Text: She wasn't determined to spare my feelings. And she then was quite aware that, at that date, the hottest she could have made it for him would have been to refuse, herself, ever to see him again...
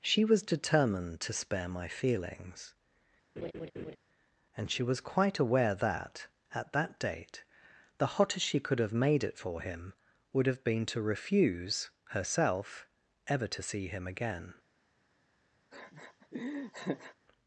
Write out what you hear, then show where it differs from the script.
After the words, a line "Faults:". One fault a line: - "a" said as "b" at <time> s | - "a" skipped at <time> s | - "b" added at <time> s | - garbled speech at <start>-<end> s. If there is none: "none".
She was determined to spare my feelings. And she was quite aware that, at that date, the hottest she could have made it for him would have been to refuse, herself, ever to see him again...
Faults:
- "wasn't" said as "was" at 0.2 s
- "then" skipped at 4.8 s